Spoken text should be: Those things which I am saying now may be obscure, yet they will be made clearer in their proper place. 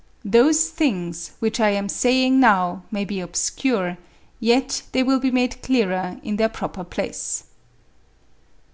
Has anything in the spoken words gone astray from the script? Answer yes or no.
no